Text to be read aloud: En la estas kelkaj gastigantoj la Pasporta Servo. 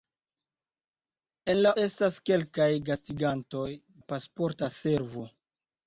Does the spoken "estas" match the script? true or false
true